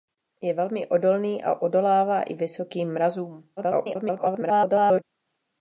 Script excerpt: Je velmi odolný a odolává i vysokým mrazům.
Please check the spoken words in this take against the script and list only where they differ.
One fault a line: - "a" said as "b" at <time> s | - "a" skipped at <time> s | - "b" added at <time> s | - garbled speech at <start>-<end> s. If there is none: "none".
- garbled speech at 3.6-5.0 s